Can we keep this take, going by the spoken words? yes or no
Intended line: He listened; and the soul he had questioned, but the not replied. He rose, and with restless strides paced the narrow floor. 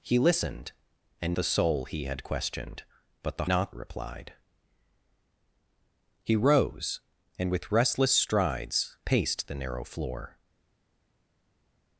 yes